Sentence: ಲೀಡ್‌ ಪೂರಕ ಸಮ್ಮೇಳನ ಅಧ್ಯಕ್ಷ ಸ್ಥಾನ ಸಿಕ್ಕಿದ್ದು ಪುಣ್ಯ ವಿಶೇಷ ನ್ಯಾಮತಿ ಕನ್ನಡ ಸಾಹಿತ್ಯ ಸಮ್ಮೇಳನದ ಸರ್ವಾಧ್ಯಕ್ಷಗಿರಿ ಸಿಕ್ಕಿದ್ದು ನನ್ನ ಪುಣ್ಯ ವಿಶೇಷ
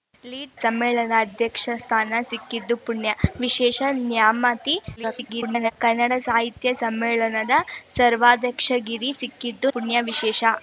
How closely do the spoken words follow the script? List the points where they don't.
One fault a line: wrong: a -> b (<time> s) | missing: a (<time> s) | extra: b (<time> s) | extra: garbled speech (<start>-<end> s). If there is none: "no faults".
missing: ಪೂರಕ (0.5 s)
extra: garbled speech (5.0-5.7 s)
missing: ನನ್ನ (9.7 s)